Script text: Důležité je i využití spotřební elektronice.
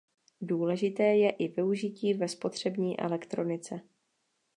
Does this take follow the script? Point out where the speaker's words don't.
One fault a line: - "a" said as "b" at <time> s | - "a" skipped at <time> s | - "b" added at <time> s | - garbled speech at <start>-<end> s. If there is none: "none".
- "ve" added at 2.1 s